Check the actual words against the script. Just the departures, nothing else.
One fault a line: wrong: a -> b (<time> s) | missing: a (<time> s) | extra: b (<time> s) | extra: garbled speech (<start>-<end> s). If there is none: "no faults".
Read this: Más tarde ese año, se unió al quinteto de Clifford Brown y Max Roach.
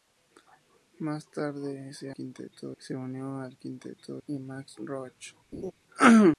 wrong: año -> quinteto (2.1 s)
missing: de Clifford Brown (4.2 s)